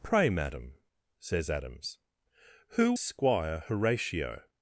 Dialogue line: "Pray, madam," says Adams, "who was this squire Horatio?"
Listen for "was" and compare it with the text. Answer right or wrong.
wrong